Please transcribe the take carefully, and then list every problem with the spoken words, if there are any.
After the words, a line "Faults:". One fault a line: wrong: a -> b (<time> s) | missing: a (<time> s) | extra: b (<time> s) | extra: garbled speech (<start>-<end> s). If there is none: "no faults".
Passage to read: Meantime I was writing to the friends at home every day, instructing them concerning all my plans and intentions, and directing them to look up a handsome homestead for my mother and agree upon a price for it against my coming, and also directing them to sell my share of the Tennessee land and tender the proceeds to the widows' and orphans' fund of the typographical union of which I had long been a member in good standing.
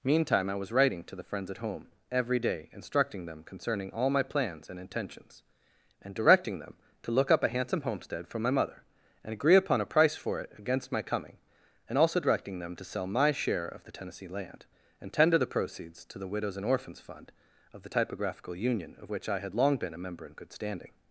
Meantime I was writing to the friends at home every day, instructing them concerning all my plans and intentions, and directing them to look up a handsome homestead for my mother and agree upon a price for it against my coming, and also directing them to sell my share of the Tennessee land and tender the proceeds to the widows' and orphans' fund of the typographical union of which I had long been a member in good standing.
Faults:
no faults